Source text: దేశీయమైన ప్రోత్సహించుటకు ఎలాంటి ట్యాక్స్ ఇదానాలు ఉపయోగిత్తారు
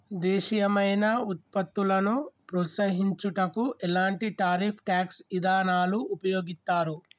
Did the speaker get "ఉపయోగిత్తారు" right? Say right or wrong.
right